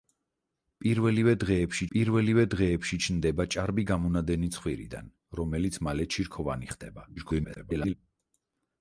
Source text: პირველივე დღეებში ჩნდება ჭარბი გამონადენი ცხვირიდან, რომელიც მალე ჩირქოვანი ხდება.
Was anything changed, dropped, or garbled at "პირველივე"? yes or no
no